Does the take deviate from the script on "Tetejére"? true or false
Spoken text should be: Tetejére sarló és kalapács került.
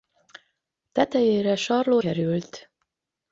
false